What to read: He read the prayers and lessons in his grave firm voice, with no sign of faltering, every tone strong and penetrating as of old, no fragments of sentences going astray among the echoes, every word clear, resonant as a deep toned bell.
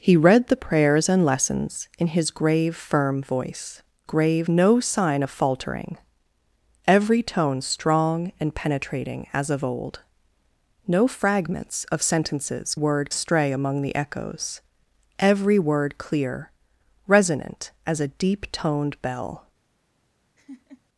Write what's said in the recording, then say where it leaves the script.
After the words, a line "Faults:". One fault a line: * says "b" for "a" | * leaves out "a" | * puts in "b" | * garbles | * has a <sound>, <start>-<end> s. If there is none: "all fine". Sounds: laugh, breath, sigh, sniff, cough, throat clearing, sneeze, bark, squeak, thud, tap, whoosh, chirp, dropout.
He read the prayers and lessons in his grave firm voice, grave no sign of faltering, every tone strong and penetrating as of old, no fragments of sentences word astray among the echoes, every word clear, resonant as a deep toned bell.
Faults:
* says "grave" for "with"
* says "word" for "going"
* has a laugh, 20.4-20.8 s